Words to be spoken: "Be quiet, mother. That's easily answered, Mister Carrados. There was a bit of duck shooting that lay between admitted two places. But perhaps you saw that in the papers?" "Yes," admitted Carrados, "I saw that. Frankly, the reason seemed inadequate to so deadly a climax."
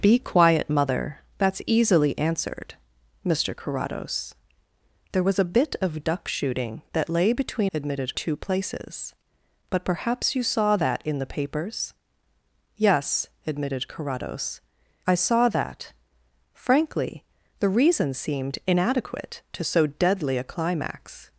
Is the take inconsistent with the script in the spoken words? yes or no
no